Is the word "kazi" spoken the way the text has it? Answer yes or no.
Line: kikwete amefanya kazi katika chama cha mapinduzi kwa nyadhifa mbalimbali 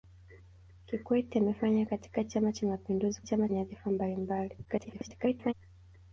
no